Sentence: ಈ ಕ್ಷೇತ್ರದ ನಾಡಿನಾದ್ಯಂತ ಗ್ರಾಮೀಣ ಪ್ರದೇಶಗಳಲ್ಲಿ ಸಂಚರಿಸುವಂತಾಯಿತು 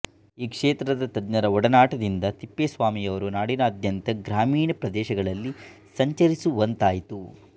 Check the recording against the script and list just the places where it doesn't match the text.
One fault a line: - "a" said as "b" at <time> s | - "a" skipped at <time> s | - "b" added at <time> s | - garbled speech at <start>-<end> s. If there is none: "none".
- "ತಜ್ಞರ ಒಡನಾಟದಿಂದ ತಿಪ್ಪೇಸ್ವಾಮಿಯವರು" added at 1.1 s